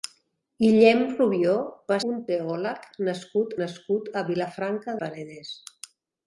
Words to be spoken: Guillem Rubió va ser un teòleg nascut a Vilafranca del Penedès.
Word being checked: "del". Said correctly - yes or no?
no